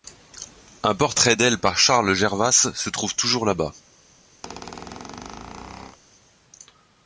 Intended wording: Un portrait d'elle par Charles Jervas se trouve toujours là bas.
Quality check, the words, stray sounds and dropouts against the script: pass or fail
fail